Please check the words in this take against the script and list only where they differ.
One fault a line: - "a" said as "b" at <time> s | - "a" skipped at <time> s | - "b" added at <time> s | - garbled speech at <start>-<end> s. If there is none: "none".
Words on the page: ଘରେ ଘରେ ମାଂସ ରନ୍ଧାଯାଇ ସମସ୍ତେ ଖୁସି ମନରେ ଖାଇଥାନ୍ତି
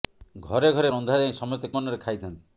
- "ମାଂସ" skipped at 0.9 s
- "ଖୁସି" skipped at 1.7 s